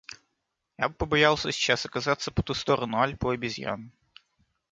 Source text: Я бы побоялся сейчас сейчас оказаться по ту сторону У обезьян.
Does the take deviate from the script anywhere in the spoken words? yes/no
yes